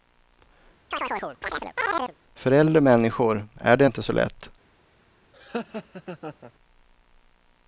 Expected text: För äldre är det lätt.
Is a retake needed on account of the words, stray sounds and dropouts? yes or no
yes